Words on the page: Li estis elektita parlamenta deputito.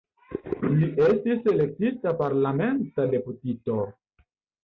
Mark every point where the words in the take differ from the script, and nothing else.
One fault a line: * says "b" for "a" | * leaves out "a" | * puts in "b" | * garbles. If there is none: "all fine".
all fine